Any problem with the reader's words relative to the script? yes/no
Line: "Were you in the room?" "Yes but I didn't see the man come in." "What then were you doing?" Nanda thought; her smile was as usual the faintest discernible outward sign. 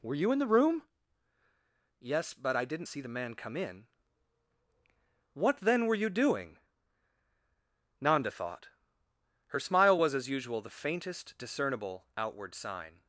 no